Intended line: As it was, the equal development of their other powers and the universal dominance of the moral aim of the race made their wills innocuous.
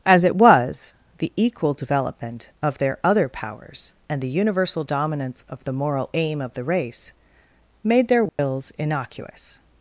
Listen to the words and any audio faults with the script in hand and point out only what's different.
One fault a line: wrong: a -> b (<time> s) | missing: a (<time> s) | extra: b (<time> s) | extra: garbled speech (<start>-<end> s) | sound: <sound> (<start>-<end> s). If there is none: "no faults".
sound: dropout (8.3-8.4 s)